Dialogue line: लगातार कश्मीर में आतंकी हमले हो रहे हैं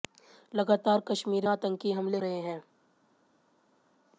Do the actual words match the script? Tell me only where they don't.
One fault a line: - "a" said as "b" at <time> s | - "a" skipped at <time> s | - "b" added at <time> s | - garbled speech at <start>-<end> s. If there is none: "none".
- "में" skipped at 1.5 s
- "हो" skipped at 2.2 s